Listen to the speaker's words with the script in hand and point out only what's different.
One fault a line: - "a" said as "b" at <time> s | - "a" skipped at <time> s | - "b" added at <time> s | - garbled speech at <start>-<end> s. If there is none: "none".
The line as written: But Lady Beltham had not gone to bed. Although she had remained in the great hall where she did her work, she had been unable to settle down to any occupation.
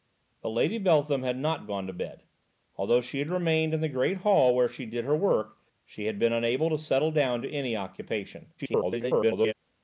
- garbled speech at 8.6-9.5 s